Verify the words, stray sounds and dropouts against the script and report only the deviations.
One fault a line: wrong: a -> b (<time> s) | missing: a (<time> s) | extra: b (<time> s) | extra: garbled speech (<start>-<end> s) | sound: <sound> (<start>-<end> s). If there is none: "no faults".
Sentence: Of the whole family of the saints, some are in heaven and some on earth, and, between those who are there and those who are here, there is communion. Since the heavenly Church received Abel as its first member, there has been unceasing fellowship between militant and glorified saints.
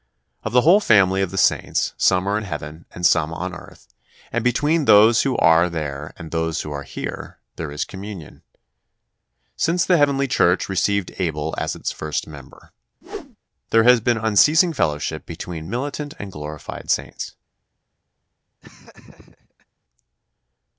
sound: whoosh (13.0-13.4 s)
sound: laugh (18.6-19.7 s)